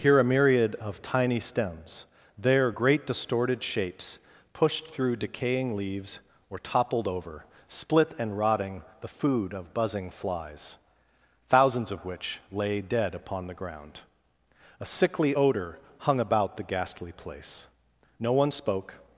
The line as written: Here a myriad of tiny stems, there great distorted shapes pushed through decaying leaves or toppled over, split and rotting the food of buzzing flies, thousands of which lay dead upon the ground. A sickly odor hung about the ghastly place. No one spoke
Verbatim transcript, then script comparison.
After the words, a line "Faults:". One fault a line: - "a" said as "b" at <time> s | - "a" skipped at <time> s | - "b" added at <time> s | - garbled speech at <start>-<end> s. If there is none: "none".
Here a myriad of tiny stems, there great distorted shapes pushed through decaying leaves or toppled over, split and rotting the food of buzzing flies, thousands of which lay dead upon the ground. A sickly odor hung about the ghastly place. No one spoke
Faults:
none